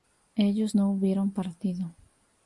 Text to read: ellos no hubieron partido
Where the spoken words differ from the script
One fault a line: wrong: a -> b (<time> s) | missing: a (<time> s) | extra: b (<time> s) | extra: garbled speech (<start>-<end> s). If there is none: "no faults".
no faults